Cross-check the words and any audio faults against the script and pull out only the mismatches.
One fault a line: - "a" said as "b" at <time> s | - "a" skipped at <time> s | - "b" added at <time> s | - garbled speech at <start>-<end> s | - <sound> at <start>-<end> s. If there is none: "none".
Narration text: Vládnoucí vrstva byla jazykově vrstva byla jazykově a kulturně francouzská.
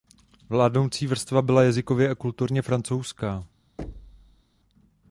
- "vrstva byla jazykově" skipped at 2.1 s
- thud at 3.8-4.4 s